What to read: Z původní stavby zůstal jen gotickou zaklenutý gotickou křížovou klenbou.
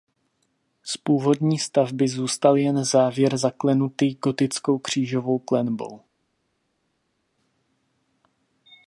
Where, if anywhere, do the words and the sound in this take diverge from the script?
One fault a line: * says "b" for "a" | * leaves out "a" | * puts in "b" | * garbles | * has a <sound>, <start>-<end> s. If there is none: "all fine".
* says "závěr" for "gotickou"